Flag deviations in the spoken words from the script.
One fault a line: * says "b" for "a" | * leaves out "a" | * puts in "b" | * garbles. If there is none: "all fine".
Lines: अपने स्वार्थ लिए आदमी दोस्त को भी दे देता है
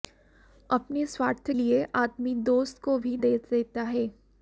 all fine